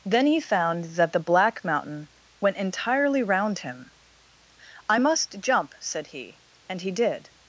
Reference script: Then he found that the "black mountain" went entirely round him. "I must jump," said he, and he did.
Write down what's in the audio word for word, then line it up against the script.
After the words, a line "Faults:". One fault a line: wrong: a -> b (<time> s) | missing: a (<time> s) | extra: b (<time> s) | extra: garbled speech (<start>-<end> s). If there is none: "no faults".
Then he found that the "black mountain" went entirely round him. "I must jump," said he, and he did.
Faults:
no faults